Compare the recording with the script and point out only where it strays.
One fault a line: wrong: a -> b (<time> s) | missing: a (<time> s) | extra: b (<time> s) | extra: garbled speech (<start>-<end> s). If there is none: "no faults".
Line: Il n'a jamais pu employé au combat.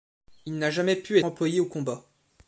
no faults